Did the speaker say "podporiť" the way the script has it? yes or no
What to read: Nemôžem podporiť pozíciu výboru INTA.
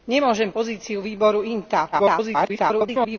no